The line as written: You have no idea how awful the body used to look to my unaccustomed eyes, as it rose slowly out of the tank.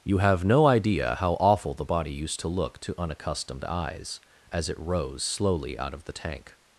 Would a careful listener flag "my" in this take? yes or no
yes